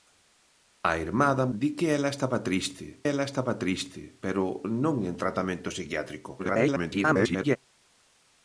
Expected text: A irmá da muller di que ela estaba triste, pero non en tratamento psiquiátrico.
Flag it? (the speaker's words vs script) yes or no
yes